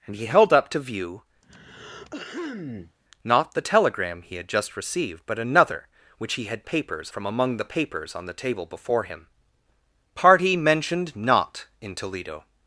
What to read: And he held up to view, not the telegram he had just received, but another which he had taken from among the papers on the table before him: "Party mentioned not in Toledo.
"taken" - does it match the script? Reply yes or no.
no